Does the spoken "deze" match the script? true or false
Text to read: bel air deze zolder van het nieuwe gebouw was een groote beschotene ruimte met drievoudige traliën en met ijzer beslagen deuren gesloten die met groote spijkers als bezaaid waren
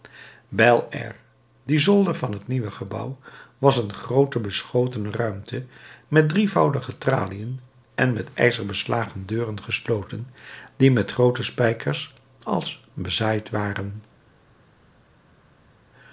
false